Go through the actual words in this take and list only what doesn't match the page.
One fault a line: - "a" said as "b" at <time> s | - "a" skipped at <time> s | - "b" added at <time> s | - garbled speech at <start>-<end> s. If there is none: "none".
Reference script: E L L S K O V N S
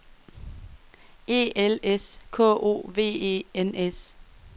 - "L" skipped at 1.8 s
- "E" added at 3.0 s